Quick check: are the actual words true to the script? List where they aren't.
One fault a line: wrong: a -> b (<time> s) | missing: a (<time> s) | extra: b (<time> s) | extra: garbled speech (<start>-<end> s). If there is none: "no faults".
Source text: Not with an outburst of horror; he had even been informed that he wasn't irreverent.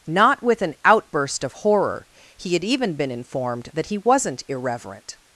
no faults